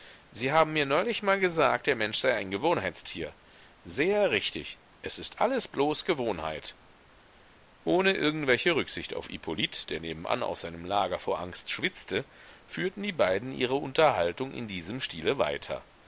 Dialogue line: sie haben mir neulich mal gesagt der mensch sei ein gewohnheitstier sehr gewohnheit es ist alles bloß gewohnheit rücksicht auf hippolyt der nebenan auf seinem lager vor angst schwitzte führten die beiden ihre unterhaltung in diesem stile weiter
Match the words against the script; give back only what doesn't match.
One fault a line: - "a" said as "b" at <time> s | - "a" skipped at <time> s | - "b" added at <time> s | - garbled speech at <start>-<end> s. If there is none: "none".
- "gewohnheit" said as "richtig" at 4.3 s
- "ohne irgendwelche" added at 7.8 s